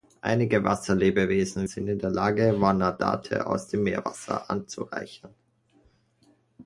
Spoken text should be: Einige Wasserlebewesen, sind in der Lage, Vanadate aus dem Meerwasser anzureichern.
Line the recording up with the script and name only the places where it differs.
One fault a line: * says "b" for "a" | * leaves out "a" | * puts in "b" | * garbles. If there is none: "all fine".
all fine